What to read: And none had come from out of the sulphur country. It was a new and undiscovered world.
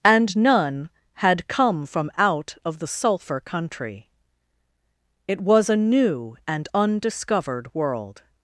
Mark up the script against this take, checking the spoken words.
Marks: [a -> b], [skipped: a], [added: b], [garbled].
And none had come from out of the sulphur country. It was a new and undiscovered world.